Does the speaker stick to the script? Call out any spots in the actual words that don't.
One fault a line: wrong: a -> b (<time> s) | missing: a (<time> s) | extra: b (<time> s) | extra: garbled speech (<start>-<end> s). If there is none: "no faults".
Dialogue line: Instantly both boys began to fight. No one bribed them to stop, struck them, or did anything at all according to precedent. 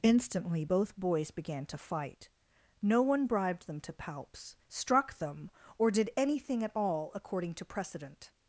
wrong: stop -> palps (3.9 s)